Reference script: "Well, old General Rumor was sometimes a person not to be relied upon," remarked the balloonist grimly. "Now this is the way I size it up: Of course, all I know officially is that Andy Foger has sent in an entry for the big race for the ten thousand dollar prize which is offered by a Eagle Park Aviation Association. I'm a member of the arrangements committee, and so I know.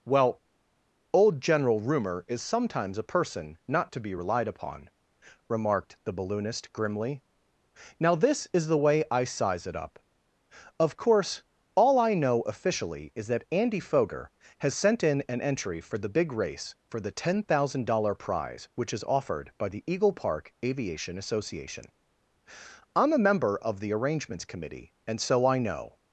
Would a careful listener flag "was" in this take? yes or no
yes